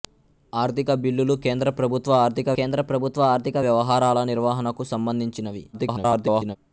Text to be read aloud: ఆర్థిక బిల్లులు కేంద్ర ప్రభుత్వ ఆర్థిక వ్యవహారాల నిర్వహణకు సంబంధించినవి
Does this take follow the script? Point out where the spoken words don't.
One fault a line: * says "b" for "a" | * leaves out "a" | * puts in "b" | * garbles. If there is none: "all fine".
* puts in "కేంద్ర ప్రభుత్వ ఆర్థిక"
* garbles